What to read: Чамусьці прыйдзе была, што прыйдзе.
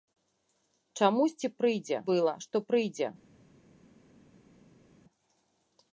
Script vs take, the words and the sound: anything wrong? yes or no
no